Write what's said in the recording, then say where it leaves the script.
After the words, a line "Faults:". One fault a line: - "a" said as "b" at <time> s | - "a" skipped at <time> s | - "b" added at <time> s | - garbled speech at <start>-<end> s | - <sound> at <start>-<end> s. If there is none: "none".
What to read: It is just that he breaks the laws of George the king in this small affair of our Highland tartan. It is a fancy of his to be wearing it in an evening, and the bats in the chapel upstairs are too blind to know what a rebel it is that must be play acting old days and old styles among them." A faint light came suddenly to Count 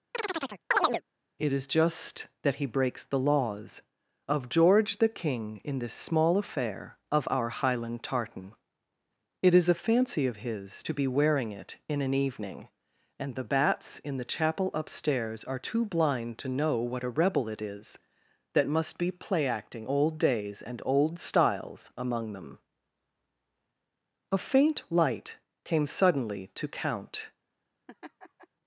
It is just that he breaks the laws of George the king in this small affair of our Highland tartan. It is a fancy of his to be wearing it in an evening, and the bats in the chapel upstairs are too blind to know what a rebel it is that must be play acting old days and old styles among them." A faint light came suddenly to Count
Faults:
- chirp at 0.1-1.0 s
- laugh at 27.9-28.5 s